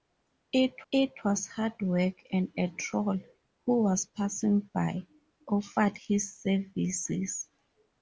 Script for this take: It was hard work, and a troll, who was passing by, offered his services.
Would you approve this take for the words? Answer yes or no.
no